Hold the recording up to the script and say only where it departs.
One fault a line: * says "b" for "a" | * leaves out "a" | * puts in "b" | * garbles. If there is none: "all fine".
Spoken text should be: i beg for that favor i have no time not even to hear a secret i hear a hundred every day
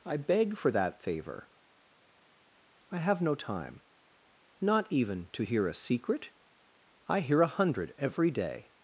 all fine